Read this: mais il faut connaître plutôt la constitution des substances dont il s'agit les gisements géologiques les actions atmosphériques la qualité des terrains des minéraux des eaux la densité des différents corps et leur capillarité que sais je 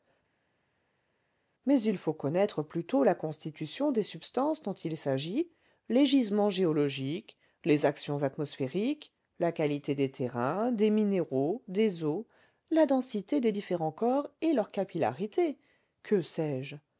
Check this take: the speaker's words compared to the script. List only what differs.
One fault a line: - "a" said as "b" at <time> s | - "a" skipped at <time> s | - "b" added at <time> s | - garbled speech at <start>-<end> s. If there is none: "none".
none